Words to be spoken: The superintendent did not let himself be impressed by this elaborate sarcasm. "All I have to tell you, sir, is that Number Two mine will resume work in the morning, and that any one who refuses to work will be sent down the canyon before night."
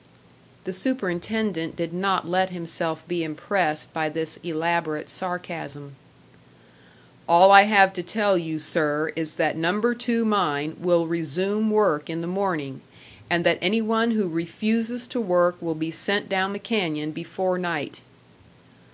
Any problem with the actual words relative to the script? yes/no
no